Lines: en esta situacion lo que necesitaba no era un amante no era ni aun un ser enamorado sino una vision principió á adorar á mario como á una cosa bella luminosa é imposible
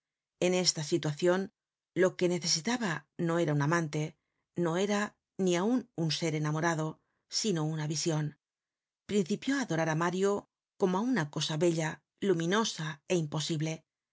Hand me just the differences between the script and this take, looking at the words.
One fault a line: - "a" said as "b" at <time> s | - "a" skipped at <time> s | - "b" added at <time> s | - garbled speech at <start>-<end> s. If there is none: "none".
none